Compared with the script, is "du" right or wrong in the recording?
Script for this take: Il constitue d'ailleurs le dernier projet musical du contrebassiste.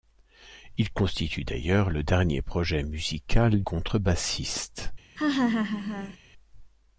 wrong